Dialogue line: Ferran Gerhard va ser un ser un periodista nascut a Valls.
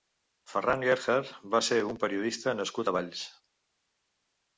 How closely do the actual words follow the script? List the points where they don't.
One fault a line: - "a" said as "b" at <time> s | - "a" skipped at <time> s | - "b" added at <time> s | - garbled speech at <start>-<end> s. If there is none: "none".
- "ser un" skipped at 2.0 s